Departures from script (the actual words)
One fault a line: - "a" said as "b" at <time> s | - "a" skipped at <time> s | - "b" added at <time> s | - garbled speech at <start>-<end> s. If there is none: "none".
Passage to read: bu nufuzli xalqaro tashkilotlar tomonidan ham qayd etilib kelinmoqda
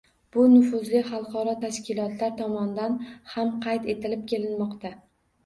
none